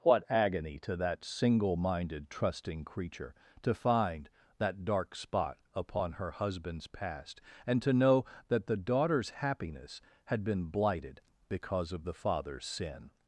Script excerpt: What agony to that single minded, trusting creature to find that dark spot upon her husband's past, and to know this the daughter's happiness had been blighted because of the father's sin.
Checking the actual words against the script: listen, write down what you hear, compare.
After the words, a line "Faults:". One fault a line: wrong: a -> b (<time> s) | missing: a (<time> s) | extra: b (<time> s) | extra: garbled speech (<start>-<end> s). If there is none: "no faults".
What agony to that single minded, trusting creature to find that dark spot upon her husband's past, and to know that the daughter's happiness had been blighted because of the father's sin.
Faults:
wrong: this -> that (8.5 s)